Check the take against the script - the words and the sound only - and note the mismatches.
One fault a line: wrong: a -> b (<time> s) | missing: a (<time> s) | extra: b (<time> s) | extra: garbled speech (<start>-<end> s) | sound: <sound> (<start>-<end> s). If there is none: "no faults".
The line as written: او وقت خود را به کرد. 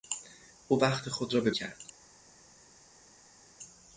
no faults